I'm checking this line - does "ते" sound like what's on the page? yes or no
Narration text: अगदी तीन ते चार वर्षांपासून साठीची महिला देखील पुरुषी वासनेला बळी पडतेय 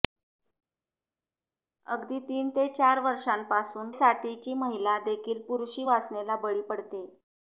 yes